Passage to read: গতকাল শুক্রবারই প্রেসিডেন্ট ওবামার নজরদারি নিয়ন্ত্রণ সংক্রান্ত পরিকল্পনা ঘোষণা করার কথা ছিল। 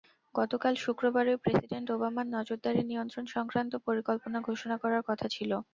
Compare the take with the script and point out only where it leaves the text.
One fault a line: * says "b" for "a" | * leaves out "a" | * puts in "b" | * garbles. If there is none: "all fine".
all fine